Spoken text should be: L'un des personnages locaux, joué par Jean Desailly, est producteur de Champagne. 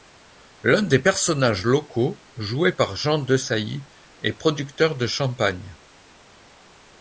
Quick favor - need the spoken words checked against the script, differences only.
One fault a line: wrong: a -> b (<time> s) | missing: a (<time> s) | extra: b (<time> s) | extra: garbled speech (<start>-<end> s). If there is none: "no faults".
no faults